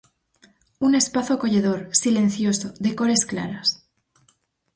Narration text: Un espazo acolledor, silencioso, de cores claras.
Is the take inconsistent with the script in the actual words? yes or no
no